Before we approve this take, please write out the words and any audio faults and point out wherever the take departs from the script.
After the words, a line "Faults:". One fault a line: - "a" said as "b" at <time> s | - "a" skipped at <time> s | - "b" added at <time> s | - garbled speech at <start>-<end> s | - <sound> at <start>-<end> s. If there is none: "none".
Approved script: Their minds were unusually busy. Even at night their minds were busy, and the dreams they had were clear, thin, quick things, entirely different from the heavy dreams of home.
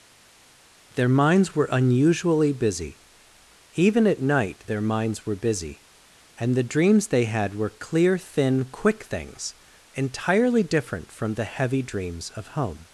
Their minds were unusually busy. Even at night their minds were busy, and the dreams they had were clear, thin, quick things, entirely different from the heavy dreams of home.
Faults:
none